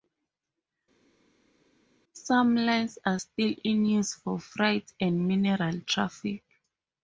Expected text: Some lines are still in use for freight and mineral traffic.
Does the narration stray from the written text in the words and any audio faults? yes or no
no